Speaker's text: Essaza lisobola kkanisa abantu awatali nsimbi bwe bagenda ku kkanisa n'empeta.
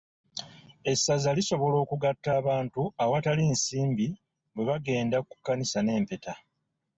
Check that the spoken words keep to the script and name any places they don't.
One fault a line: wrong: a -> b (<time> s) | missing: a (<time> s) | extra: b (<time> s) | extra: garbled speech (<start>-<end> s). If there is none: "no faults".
wrong: kkanisa -> okugatta (1.8 s)